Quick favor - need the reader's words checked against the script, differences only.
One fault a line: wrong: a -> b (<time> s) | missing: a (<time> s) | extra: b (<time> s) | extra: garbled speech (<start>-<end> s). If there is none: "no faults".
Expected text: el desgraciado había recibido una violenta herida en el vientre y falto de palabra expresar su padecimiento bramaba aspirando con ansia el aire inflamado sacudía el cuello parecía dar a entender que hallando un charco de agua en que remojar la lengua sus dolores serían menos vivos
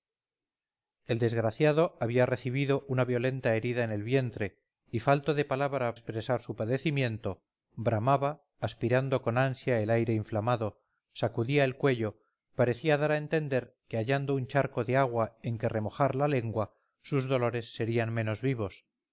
no faults